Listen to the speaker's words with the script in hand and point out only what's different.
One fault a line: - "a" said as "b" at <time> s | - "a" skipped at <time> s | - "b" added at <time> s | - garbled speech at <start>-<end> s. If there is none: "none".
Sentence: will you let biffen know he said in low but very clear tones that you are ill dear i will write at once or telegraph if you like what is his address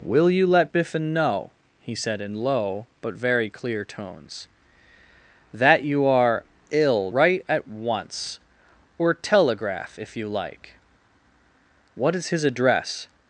- "dear i will" skipped at 7.1 s